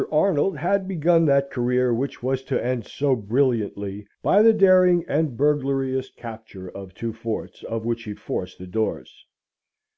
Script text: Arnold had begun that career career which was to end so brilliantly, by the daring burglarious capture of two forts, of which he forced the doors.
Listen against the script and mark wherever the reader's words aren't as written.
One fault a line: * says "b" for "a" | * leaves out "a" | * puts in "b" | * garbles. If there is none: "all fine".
* leaves out "career"
* puts in "and"